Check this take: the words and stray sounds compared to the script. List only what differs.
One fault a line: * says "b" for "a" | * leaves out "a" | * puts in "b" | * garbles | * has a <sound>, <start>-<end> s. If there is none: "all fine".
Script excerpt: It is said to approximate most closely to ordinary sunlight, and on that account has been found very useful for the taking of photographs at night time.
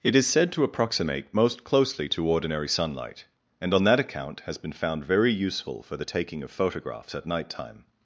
all fine